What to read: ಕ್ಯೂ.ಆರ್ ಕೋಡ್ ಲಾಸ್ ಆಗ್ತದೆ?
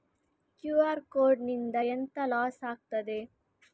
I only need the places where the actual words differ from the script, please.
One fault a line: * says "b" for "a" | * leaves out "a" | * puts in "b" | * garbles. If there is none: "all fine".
* puts in "ನಿಂದ ಎಂತ"